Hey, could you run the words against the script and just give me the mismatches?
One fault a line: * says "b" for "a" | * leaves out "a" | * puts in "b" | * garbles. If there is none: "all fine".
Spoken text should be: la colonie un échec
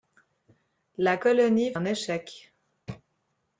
all fine